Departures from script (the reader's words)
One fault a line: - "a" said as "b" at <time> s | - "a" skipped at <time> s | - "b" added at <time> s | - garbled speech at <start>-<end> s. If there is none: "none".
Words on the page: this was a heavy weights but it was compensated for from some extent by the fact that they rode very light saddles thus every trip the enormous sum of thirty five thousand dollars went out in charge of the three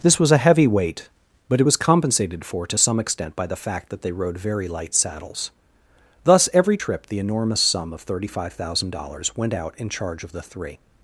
- "weights" said as "weight" at 0.7 s
- "from" said as "to" at 2.7 s